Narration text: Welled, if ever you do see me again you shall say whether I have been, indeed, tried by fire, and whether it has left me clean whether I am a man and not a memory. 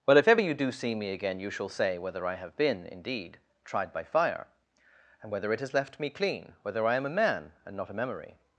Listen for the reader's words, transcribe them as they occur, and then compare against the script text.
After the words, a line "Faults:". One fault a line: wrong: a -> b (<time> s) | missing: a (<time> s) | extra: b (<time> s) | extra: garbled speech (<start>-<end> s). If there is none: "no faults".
Well, if ever you do see me again you shall say whether I have been, indeed, tried by fire, and whether it has left me clean whether I am a man and not a memory.
Faults:
wrong: Welled -> Well (0.1 s)